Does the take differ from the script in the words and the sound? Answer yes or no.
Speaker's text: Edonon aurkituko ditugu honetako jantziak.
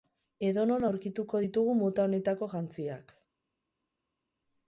yes